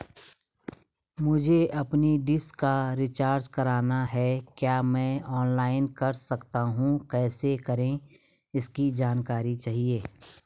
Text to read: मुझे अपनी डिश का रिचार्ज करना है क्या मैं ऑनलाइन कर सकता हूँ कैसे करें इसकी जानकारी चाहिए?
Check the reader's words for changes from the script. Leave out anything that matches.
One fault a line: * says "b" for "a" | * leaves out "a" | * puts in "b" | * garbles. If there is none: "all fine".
all fine